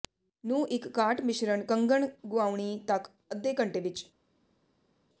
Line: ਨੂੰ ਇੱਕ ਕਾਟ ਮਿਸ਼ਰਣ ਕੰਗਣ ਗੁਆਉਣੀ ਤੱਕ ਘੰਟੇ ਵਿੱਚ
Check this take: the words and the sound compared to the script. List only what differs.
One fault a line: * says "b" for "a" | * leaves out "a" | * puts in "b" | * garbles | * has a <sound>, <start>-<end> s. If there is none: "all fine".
* puts in "ਅੱਧੇ"